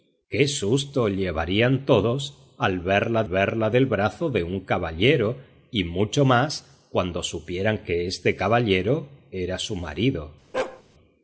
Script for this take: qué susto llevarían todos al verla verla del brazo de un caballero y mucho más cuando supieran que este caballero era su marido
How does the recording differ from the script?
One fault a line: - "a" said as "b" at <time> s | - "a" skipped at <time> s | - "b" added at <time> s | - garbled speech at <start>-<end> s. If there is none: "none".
none